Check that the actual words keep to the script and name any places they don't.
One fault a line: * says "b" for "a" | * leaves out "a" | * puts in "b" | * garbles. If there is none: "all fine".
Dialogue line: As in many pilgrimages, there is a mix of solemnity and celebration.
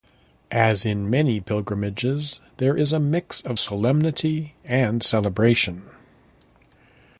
all fine